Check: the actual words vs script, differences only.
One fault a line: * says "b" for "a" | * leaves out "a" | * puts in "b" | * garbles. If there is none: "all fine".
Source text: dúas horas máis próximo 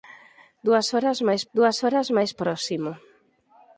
* puts in "dúas horas máis"